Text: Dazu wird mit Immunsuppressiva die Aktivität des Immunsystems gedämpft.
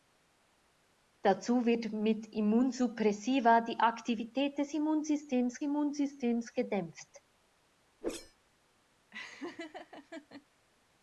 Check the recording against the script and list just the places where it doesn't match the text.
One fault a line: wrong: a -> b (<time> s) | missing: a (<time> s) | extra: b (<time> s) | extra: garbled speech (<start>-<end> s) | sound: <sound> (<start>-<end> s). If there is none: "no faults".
extra: Immunsystems (5.6 s)
sound: whoosh (8.0-8.4 s)
sound: laugh (9.1-10.5 s)